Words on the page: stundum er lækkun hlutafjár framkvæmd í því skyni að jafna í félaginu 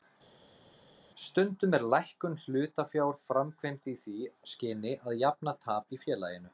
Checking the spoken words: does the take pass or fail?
fail